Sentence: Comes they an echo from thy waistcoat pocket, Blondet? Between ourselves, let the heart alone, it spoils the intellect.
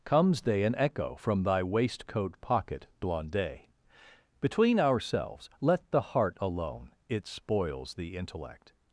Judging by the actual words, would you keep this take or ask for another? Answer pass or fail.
pass